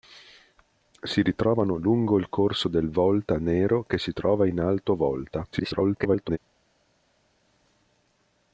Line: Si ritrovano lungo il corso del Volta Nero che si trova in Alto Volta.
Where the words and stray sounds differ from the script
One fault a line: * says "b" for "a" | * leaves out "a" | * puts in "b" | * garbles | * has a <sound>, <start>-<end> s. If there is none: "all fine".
* garbles